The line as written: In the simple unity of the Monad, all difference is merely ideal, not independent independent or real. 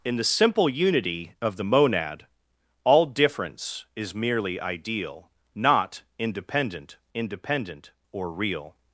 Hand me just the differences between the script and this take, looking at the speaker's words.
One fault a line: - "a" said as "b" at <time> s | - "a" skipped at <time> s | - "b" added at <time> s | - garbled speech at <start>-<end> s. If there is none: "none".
none